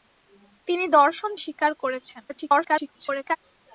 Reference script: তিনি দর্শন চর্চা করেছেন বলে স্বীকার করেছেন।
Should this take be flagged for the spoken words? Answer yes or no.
yes